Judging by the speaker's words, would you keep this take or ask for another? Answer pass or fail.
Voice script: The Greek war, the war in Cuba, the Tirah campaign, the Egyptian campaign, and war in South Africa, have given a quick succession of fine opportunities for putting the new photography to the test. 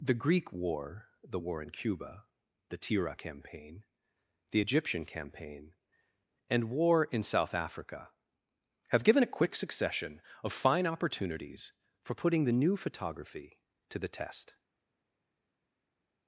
pass